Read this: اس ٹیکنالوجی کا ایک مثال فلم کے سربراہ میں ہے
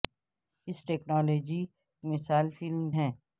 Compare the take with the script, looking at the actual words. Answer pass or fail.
fail